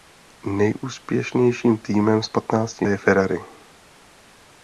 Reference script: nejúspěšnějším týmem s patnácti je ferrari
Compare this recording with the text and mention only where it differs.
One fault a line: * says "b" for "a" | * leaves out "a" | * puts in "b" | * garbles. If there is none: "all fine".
all fine